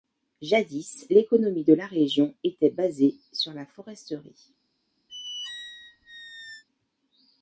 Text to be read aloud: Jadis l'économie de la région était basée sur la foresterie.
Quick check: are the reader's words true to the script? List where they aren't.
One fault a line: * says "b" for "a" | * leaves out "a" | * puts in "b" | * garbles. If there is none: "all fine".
all fine